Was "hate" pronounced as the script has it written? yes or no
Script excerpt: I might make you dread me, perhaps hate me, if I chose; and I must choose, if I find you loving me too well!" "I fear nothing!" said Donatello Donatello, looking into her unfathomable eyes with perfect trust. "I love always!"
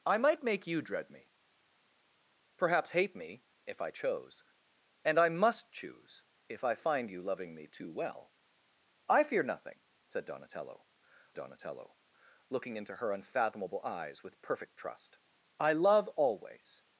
yes